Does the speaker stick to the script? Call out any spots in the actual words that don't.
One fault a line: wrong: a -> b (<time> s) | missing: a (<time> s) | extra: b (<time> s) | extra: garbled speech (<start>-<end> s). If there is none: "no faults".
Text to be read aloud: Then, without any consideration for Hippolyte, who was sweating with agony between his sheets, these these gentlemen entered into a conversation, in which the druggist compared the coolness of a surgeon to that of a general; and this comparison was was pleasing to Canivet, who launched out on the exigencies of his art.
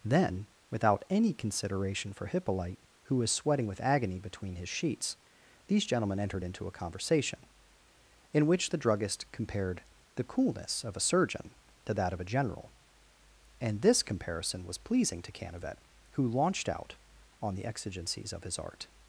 missing: these (5.8 s)
missing: was (14.8 s)